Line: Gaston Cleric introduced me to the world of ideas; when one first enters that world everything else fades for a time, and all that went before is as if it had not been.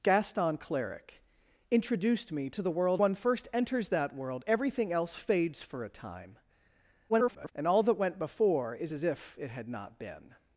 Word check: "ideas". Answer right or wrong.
wrong